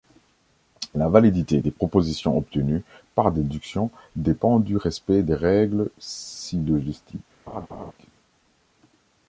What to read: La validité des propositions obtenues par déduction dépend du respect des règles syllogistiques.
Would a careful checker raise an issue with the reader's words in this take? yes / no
no